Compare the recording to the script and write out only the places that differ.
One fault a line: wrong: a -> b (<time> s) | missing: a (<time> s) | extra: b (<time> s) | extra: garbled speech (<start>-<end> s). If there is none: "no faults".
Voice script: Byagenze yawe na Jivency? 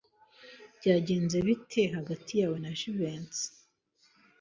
extra: bite hagati (1.5 s)